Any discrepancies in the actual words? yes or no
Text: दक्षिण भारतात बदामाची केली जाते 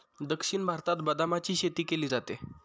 yes